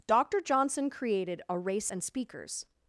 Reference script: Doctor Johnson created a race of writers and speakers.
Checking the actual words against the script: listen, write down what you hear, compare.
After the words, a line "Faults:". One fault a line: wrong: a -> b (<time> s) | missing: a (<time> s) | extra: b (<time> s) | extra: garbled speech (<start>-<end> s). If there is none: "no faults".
Doctor Johnson created a race and speakers.
Faults:
missing: of writers (1.9 s)